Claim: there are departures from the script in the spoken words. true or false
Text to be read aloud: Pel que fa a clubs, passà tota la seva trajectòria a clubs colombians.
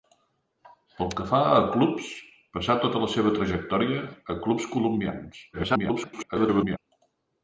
true